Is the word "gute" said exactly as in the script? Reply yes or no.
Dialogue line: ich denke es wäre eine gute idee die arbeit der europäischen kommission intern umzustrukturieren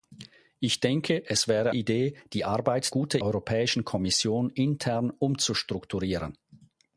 no